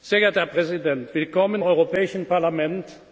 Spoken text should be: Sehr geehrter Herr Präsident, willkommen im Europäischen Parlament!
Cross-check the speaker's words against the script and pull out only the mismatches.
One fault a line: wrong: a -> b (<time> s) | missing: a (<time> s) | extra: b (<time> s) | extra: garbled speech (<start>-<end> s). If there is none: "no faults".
missing: im (1.6 s)